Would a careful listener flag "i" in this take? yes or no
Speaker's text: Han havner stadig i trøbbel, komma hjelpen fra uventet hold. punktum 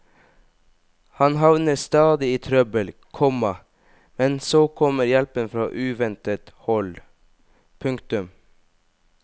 no